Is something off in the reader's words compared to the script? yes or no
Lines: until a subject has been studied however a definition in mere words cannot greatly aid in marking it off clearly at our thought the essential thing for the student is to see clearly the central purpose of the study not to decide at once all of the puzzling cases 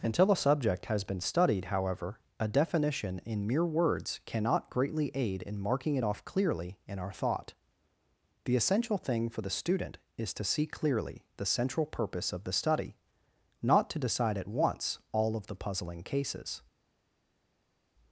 yes